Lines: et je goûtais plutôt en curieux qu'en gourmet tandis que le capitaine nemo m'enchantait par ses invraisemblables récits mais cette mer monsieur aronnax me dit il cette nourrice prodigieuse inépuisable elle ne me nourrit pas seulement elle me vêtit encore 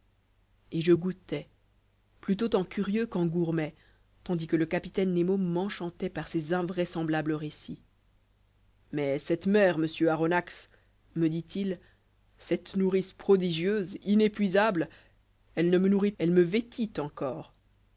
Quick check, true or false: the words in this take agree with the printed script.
false